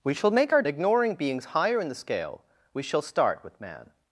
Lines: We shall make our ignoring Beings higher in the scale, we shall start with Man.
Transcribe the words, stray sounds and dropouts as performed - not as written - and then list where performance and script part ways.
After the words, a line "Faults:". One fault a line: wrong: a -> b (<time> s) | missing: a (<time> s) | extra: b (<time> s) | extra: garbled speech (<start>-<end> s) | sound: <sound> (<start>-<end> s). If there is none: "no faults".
We shall make our ignoring Beings higher in the scale, we shall start with Man.
Faults:
no faults